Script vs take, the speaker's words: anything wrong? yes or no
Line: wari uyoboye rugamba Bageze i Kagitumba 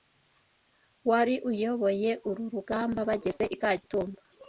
yes